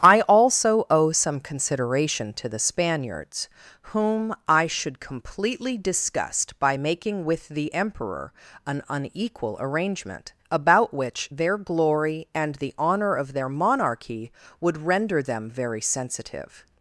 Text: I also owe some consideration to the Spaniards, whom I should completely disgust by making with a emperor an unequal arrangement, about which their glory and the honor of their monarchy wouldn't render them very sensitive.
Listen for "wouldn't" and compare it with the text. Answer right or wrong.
wrong